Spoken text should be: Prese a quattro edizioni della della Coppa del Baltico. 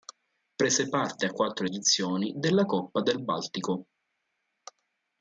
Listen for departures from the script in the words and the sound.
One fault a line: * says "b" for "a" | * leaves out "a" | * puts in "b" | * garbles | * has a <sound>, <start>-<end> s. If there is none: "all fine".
* puts in "parte"
* leaves out "della"